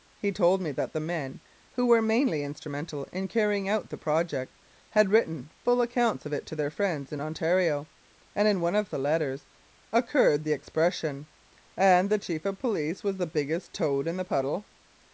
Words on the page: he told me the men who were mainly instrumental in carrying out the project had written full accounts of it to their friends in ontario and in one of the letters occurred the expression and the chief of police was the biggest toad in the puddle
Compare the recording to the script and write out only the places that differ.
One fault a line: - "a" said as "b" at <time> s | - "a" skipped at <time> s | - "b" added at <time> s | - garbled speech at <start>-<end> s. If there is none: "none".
- "that" added at 0.7 s